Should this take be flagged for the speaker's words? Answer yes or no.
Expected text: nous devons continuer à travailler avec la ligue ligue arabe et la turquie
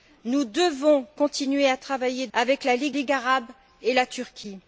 no